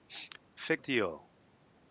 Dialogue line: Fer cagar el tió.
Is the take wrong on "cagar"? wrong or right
wrong